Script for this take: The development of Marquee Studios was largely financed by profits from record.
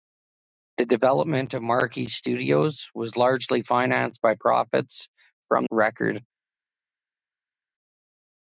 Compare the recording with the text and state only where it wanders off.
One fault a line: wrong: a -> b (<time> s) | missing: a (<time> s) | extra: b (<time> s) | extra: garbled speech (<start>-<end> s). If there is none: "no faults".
no faults